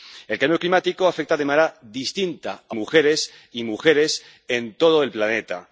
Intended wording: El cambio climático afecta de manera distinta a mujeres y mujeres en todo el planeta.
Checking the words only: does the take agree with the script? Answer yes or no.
yes